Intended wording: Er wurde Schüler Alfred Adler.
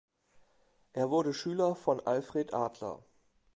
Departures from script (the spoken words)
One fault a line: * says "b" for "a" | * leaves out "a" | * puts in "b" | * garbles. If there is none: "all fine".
* puts in "von"